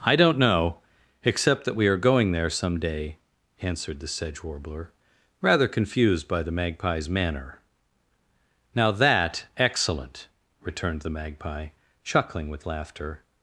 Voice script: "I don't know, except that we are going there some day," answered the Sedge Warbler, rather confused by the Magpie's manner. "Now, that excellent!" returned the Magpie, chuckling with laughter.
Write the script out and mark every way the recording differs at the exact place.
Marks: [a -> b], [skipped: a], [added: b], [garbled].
"I don't know, except that we are going there some day," answered the Sedge Warbler, rather confused by the Magpie's manner. "Now, that excellent!" returned the Magpie, chuckling with laughter.